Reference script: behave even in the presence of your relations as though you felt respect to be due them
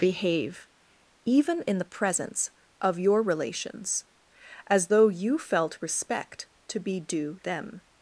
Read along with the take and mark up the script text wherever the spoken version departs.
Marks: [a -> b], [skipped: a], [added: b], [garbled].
behave even in the presence of your relations as though you felt respect to be due them